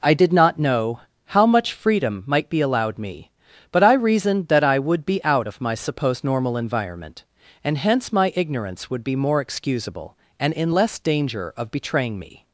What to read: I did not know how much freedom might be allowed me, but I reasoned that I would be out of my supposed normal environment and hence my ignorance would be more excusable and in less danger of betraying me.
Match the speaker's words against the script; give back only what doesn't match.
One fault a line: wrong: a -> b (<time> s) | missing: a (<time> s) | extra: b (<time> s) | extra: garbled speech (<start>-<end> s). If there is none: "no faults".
no faults